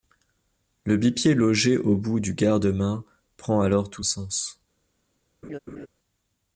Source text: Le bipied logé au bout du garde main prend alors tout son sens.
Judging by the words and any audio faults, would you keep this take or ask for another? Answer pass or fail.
fail